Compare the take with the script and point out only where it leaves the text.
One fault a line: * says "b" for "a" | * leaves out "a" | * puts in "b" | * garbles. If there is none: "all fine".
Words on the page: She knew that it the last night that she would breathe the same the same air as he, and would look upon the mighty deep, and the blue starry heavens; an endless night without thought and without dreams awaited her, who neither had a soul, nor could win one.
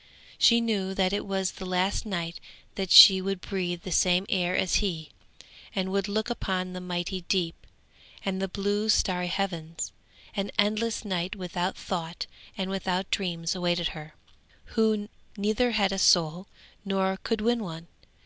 * puts in "was"
* leaves out "the same"